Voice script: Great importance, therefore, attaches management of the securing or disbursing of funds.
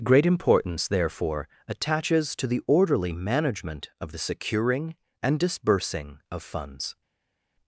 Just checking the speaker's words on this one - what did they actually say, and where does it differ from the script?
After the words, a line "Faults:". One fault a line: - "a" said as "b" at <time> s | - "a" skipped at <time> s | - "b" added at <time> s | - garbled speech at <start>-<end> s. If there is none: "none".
Great importance, therefore, attaches to the orderly management of the securing and disbursing of funds.
Faults:
- "to the orderly" added at 2.4 s
- "or" said as "and" at 5.2 s